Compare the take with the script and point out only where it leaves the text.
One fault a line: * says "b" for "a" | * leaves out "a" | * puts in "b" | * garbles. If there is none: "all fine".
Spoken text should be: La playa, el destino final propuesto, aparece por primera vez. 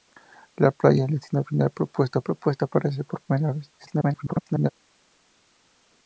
* puts in "propuesto"
* garbles